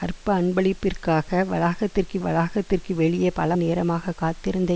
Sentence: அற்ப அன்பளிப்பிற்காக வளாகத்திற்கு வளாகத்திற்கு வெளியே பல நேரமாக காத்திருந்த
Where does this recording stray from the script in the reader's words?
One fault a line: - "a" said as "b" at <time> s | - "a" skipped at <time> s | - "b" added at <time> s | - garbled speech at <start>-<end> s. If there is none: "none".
none